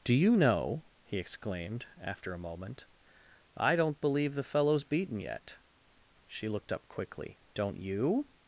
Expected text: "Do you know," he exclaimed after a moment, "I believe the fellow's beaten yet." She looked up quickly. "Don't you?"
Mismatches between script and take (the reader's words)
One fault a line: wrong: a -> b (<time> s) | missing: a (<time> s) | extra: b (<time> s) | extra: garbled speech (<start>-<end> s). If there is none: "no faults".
extra: don't (3.8 s)